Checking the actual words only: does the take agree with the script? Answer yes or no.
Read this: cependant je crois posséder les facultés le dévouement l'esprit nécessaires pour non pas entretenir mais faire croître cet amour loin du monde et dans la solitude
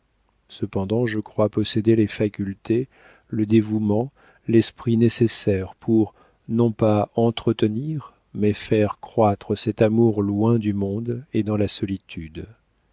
yes